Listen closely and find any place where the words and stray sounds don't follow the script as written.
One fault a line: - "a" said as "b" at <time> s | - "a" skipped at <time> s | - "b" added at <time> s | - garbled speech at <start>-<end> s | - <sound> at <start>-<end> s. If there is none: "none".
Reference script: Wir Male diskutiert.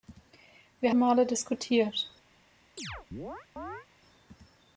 - chirp at 2.8-3.9 s